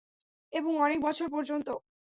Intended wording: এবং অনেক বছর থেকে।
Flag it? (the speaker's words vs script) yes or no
yes